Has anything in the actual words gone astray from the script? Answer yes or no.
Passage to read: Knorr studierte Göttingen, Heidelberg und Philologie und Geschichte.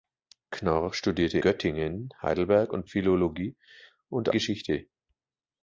no